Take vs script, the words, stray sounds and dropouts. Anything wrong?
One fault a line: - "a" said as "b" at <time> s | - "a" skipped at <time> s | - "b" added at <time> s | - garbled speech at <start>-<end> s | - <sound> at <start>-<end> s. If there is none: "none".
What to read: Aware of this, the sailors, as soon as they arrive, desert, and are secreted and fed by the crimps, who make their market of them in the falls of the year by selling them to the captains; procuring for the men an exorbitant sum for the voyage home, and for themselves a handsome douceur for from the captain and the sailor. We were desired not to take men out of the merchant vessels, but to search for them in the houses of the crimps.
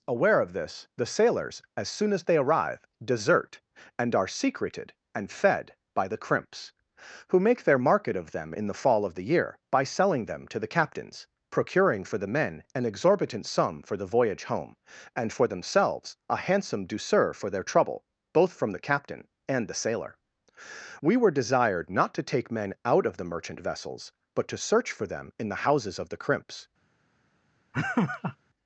- "falls" said as "fall" at 8.7 s
- "their trouble both" added at 17.5 s
- laugh at 27.7-28.4 s